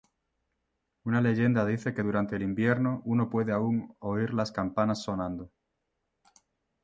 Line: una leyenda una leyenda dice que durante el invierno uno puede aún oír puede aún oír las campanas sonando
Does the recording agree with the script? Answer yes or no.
no